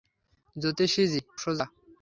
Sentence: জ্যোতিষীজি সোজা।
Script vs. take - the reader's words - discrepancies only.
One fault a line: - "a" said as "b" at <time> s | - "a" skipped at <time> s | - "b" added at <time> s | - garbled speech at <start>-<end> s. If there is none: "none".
none